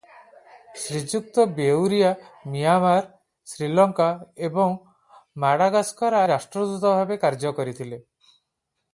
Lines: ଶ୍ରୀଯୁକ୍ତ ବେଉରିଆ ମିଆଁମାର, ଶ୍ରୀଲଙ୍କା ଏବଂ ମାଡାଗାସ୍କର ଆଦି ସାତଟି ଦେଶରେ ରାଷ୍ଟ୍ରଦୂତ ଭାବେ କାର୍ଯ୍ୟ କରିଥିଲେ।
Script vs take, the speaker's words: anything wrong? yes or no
yes